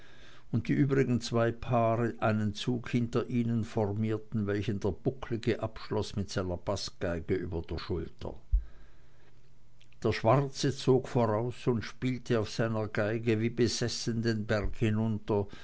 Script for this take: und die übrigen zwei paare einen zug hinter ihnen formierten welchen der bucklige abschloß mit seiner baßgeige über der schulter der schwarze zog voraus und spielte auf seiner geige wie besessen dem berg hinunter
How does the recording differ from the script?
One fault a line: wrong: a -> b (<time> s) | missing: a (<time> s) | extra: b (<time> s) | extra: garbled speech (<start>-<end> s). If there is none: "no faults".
wrong: dem -> den (14.2 s)